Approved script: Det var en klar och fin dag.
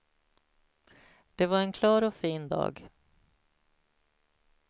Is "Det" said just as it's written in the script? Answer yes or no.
yes